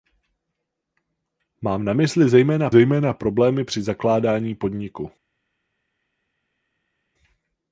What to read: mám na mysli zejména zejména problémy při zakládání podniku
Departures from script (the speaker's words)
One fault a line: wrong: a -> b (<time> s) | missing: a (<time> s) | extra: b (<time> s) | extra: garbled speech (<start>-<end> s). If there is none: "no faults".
no faults